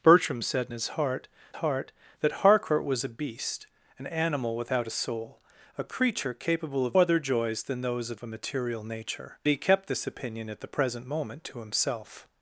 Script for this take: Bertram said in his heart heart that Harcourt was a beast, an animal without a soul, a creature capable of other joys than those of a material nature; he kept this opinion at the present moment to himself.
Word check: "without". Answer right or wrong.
right